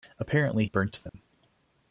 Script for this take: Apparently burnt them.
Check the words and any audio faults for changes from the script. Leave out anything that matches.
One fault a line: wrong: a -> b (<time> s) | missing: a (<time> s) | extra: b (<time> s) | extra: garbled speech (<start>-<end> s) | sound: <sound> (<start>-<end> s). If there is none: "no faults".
sound: dropout (1.1-1.1 s)